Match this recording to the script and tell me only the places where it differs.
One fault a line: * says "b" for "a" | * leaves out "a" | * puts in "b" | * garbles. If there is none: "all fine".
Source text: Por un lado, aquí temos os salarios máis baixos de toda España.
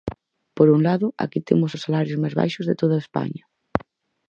all fine